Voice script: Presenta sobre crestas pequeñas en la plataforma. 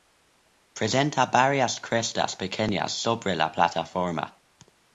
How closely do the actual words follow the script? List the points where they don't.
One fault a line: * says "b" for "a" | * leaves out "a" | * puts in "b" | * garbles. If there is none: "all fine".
* says "varias" for "sobre"
* says "sobre" for "en"